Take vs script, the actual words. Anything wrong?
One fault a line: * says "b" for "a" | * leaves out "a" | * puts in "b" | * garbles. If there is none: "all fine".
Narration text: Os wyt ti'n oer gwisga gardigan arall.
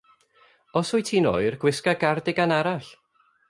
all fine